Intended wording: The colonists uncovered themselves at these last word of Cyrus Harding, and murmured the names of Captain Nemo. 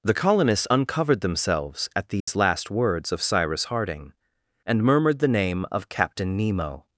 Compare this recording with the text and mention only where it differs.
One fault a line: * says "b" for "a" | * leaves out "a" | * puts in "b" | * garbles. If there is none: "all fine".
* says "words" for "word"
* says "name" for "names"